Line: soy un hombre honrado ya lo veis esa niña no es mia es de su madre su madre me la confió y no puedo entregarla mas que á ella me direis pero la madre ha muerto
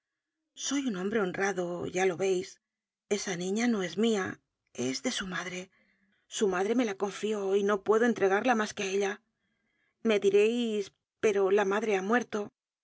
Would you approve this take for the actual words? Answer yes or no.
yes